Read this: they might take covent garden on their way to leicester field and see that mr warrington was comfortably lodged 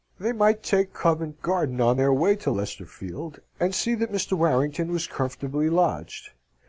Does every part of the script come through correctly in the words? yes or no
yes